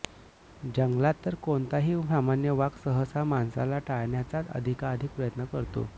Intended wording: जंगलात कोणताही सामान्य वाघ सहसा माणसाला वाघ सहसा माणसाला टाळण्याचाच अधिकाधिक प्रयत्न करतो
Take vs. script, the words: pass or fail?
fail